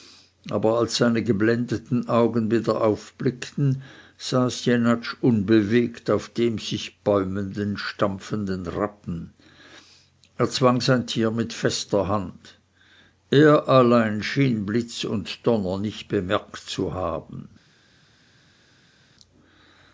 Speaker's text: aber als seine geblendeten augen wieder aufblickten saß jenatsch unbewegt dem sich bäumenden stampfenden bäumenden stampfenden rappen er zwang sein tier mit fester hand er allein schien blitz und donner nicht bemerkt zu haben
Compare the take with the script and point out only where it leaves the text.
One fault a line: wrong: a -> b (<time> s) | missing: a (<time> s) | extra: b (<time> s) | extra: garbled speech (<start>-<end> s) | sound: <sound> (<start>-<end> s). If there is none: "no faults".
extra: auf (6.1 s)
missing: bäumenden stampfenden (8.7 s)